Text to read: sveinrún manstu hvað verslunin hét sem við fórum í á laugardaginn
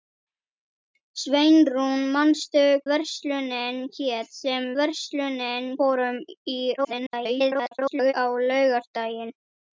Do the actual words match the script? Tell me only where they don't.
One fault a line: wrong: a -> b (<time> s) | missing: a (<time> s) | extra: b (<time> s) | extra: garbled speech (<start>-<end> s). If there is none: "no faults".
missing: hvað (2.6 s)
wrong: við -> verslunin (4.8 s)
extra: garbled speech (6.8-8.1 s)